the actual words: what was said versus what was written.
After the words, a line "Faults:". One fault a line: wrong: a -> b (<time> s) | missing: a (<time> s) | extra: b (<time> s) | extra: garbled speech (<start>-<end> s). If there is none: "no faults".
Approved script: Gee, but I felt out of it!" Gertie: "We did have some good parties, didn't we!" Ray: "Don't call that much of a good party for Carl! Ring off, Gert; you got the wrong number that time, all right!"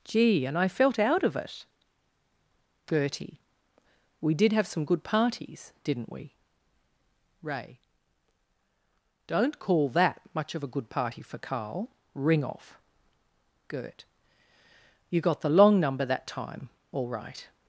Gee, and I felt out of it!" Gertie: "We did have some good parties, didn't we!" Ray: "Don't call that much of a good party for Carl! Ring off, Gert; you got the long number that time, all right!"
Faults:
wrong: but -> and (0.5 s)
wrong: wrong -> long (15.5 s)